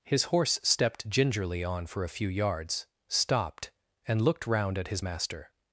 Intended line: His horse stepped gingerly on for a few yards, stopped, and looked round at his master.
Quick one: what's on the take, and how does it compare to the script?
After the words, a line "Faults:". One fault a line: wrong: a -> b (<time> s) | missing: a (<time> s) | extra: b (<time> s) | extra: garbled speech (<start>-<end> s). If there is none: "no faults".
His horse stepped gingerly on for a few yards, stopped, and looked round at his master.
Faults:
no faults